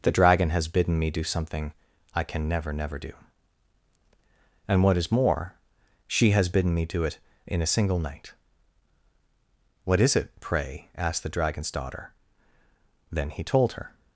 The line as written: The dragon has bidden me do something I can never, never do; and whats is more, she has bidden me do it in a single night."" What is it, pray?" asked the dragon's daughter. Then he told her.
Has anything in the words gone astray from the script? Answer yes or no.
yes